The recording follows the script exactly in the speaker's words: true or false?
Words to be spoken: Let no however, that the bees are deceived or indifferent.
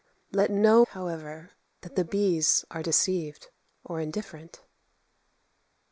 true